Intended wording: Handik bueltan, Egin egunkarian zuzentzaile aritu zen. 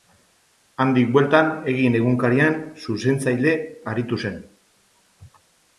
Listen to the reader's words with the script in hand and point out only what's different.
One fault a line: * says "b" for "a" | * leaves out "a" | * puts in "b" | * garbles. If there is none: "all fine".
all fine